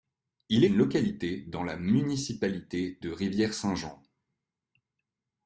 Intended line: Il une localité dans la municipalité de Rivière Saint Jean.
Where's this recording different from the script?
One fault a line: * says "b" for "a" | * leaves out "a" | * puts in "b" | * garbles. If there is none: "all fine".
all fine